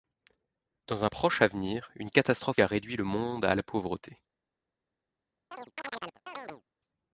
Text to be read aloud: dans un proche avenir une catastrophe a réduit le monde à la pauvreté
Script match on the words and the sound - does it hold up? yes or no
no